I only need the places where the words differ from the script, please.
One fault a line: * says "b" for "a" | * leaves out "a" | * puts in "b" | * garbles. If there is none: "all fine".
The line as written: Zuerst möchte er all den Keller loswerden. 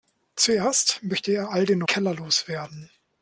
all fine